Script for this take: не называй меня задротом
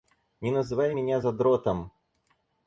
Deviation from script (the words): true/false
false